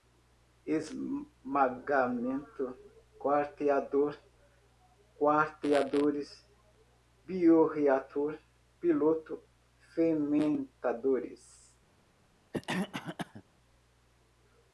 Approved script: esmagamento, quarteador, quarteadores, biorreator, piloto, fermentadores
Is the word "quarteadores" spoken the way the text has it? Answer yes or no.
yes